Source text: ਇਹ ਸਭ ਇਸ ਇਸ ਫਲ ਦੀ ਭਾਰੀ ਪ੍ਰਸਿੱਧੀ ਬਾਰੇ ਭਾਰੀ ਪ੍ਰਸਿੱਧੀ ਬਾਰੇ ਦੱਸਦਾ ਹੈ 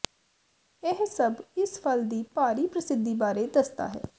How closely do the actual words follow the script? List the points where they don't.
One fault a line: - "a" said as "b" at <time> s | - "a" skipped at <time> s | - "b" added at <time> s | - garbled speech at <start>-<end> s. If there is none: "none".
- "ਇਸ" skipped at 1.8 s
- "ਭਾਰੀ ਪ੍ਰਸਿੱਧੀ ਬਾਰੇ" skipped at 3.5 s